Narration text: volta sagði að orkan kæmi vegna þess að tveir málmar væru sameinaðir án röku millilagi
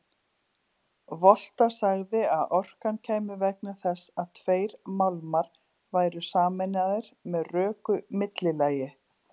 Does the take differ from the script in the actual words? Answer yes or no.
yes